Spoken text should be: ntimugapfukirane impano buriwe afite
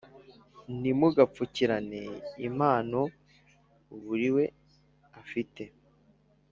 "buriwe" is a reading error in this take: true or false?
false